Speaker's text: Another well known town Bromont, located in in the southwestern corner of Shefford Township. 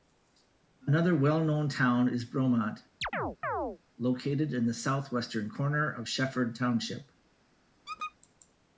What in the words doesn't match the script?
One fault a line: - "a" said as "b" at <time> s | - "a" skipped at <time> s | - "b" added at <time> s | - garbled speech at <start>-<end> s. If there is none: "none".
- "is" added at 2.1 s
- "in" skipped at 4.7 s